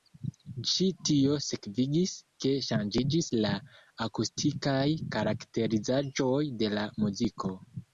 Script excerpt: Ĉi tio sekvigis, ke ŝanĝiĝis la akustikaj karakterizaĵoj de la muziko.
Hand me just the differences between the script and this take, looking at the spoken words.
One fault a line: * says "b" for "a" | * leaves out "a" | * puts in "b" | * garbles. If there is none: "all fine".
all fine